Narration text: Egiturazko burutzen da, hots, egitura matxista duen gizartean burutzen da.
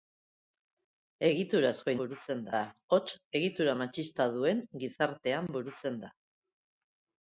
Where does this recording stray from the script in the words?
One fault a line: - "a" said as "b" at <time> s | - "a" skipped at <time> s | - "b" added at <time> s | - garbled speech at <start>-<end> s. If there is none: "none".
none